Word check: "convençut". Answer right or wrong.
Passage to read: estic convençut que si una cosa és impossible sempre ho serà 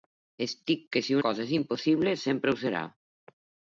wrong